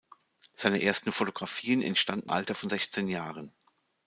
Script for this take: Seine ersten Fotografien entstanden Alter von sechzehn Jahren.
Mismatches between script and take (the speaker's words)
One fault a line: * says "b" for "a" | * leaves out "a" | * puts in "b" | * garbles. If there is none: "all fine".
all fine